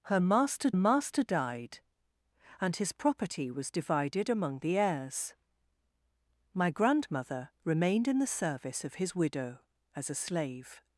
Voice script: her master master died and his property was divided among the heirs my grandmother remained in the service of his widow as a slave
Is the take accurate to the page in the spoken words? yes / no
yes